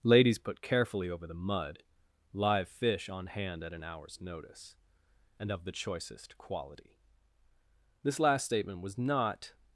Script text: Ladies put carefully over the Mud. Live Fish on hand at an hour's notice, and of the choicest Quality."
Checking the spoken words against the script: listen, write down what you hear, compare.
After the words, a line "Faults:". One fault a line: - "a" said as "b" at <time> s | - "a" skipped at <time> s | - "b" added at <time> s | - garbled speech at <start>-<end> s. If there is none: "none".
Ladies put carefully over the Mud. Live Fish on hand at an hour's notice, and of the choicest Quality." This last statement was not
Faults:
- "This last statement was not" added at 8.0 s